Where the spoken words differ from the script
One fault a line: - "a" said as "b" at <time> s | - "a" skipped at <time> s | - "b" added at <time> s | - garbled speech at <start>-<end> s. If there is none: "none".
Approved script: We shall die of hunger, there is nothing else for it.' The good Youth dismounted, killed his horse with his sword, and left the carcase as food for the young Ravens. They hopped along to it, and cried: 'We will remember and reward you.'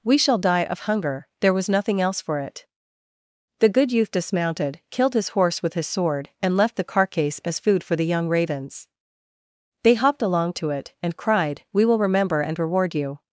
- "is" said as "was" at 1.5 s